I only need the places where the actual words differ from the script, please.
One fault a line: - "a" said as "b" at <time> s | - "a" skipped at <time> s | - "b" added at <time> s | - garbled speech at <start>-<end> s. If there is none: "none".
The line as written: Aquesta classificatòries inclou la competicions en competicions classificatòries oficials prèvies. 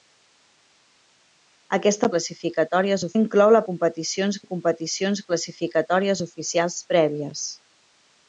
none